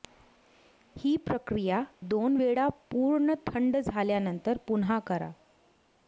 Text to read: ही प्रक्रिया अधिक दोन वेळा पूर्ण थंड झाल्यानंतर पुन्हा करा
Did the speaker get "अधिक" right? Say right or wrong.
wrong